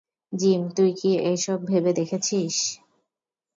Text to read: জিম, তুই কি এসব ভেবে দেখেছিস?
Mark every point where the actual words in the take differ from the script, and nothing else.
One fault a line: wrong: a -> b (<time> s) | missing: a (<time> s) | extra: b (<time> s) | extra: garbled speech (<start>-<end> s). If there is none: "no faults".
no faults